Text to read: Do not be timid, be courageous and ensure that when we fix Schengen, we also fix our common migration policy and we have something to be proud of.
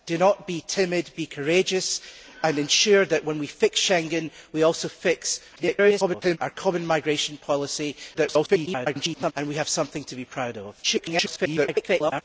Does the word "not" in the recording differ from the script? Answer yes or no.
no